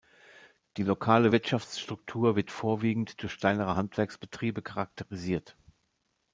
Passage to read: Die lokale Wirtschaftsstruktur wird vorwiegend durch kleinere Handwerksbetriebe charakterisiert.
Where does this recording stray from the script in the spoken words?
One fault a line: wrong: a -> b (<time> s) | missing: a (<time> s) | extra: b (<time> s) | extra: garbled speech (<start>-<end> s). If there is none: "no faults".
no faults